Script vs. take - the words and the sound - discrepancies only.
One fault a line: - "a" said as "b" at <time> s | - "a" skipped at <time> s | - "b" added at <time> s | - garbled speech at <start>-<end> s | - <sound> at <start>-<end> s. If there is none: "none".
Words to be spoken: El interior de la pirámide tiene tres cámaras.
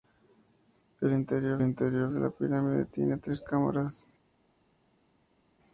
- "interior" added at 1.6 s